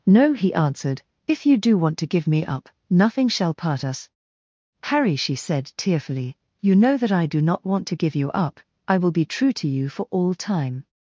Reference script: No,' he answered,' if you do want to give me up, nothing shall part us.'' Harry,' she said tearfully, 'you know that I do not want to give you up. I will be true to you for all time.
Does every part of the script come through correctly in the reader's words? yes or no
yes